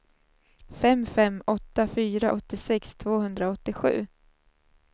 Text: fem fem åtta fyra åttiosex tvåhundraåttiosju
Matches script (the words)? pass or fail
pass